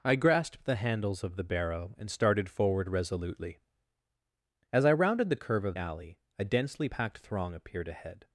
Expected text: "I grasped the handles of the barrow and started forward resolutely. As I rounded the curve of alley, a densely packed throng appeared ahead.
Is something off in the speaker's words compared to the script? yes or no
no